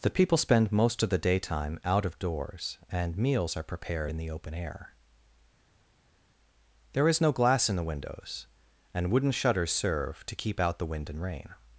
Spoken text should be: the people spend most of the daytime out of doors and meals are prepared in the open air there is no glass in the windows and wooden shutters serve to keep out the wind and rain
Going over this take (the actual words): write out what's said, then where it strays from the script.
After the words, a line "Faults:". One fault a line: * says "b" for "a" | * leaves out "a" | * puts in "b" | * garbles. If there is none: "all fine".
the people spend most of the daytime out of doors and meals are prepared in the open air there is no glass in the windows and wooden shutters serve to keep out the wind and rain
Faults:
all fine